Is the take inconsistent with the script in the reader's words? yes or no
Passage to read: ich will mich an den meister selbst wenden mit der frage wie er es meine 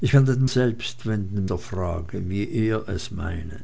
yes